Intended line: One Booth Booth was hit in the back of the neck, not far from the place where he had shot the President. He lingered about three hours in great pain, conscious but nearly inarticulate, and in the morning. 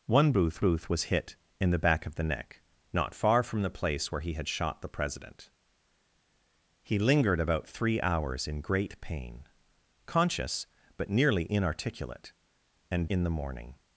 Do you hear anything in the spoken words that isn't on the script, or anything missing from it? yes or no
no